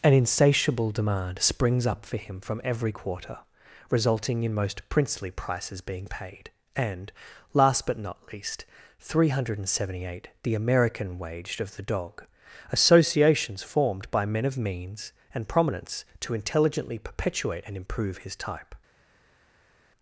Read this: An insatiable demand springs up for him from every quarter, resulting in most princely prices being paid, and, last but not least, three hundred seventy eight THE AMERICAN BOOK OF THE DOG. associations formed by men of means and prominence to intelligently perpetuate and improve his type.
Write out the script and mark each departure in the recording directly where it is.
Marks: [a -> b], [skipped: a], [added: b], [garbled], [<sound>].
An insatiable demand springs up for him from every quarter, resulting in most princely prices being paid, and, last but not least, three hundred seventy eight THE AMERICAN [BOOK -> Waged] OF THE DOG. associations formed by men of means and prominence to intelligently perpetuate and improve his type.